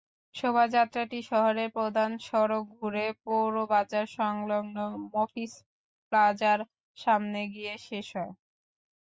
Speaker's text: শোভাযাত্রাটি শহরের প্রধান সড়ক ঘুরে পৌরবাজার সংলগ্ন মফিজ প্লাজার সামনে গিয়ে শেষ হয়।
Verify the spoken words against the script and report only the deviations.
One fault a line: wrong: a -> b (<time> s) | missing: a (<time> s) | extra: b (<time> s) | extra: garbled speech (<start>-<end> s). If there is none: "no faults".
no faults